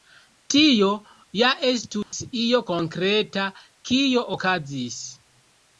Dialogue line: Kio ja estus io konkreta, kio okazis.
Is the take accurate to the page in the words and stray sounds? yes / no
no